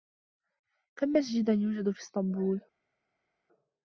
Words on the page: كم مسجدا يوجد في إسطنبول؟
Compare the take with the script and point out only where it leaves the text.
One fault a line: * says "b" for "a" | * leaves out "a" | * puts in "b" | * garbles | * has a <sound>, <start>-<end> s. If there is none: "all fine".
all fine